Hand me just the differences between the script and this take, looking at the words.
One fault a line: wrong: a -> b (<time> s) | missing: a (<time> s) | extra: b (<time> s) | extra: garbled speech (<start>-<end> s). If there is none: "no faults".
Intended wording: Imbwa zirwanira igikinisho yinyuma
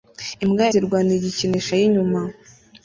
no faults